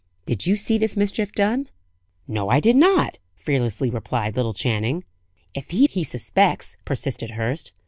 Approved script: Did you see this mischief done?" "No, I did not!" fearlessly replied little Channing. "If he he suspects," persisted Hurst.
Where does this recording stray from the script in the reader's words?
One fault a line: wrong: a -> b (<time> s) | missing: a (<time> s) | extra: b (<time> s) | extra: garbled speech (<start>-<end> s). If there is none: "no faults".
no faults